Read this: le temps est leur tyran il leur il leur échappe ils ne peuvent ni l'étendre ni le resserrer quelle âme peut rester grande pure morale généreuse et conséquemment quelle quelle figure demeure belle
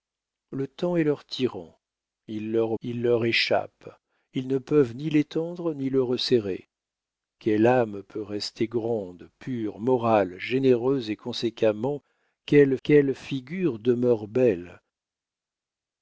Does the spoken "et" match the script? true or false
true